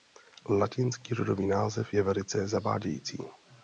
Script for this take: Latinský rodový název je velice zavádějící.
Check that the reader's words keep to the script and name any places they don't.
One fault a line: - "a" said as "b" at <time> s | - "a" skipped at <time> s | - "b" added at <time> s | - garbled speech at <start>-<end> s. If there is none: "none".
none